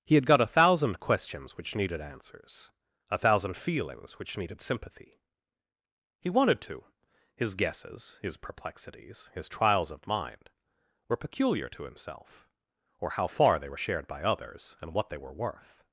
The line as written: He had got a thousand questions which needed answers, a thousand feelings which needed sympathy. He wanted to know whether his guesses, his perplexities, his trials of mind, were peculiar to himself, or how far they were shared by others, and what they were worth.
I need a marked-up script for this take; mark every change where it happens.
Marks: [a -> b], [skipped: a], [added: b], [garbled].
He had got a thousand questions which needed answers, a thousand feelings which needed sympathy. He wanted to [skipped: know whether] his guesses, his perplexities, his trials of mind, were peculiar to himself, or how far they were shared by others, and what they were worth.